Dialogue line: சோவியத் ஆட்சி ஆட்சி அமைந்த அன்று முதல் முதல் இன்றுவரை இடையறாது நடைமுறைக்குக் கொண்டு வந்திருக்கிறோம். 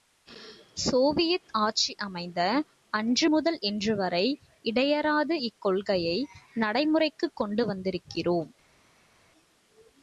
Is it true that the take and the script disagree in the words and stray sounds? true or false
true